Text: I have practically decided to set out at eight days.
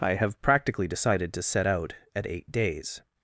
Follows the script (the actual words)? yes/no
yes